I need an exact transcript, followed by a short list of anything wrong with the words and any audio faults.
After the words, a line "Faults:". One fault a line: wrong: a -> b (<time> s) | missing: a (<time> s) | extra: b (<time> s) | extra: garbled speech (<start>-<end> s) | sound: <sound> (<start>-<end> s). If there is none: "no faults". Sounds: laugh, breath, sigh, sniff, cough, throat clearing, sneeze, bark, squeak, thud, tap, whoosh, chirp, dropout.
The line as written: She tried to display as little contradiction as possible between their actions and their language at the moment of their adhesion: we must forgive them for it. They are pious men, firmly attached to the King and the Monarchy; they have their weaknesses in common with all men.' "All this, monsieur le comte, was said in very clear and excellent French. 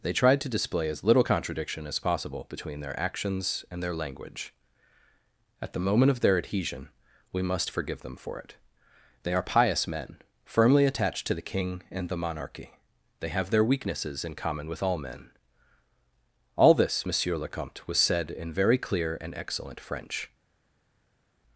They tried to display as little contradiction as possible between their actions and their language at the moment of their adhesion: we must forgive them for it. They are pious men, firmly attached to the King and the Monarchy; they have their weaknesses in common with all men.' "All this, monsieur le comte, was said in very clear and excellent French.
Faults:
wrong: She -> They (0.0 s)